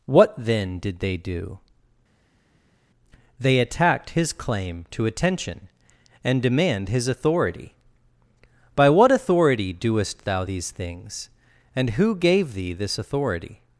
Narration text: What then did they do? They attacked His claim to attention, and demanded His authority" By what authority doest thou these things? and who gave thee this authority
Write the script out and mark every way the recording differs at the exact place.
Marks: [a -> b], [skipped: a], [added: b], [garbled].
What then did they do? They attacked His claim to attention, and [demanded -> demand] His authority" By what authority doest thou these things? and who gave thee this authority